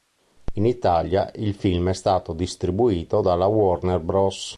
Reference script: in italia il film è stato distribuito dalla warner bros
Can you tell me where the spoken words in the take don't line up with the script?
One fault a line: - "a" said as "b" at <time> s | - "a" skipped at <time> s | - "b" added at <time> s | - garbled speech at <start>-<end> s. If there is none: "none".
none